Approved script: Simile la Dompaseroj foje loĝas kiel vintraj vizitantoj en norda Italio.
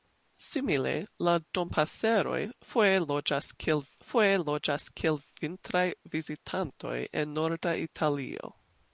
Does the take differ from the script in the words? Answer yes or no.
yes